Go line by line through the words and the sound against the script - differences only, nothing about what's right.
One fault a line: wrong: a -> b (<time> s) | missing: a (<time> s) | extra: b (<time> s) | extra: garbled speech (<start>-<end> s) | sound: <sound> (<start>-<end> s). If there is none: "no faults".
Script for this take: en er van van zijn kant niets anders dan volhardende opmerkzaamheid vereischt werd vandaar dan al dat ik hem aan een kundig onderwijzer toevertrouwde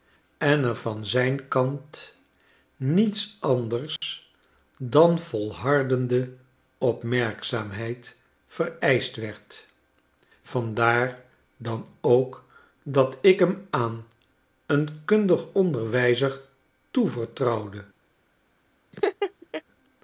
missing: van (1.1 s)
sound: dropout (4.0-4.0 s)
wrong: al -> ook (12.0 s)
sound: laugh (18.9-19.6 s)